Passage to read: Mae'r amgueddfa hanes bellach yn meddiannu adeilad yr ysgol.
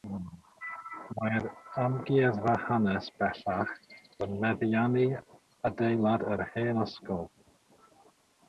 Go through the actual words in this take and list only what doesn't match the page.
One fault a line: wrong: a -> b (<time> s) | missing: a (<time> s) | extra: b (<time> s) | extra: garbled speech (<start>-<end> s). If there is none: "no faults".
extra: hen (6.6 s)